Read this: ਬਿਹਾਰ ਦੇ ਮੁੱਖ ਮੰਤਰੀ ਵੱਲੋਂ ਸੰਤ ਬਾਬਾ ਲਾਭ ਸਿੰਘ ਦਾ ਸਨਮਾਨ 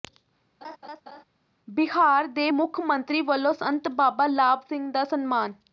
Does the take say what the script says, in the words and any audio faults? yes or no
no